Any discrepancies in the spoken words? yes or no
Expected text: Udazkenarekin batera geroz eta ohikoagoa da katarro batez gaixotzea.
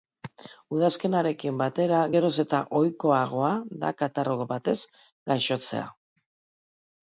no